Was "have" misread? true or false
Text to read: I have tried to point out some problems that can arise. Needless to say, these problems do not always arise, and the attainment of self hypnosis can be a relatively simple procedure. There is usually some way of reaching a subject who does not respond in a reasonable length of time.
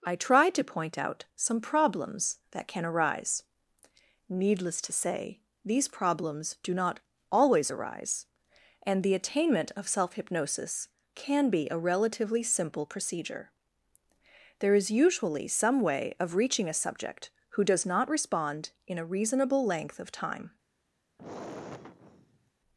true